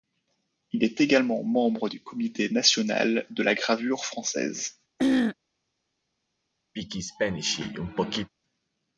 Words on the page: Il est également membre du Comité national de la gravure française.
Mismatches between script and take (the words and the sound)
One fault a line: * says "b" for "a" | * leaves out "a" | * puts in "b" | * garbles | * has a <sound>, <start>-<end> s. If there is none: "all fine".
* has a throat clearing, 5.0-5.4 s
* has a throat clearing, 6.8-8.3 s